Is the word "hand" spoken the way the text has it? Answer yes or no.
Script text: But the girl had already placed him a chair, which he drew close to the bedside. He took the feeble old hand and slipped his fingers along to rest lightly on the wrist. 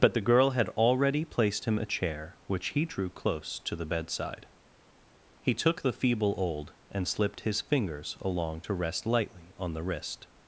no